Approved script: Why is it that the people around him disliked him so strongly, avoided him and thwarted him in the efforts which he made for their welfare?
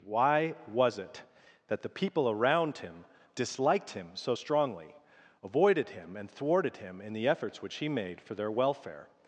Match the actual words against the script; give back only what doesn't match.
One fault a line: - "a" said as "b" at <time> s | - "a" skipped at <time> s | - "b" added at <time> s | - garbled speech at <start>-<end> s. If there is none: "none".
- "is" said as "was" at 0.7 s